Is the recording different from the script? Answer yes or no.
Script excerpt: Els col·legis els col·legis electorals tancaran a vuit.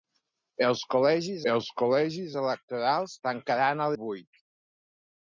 no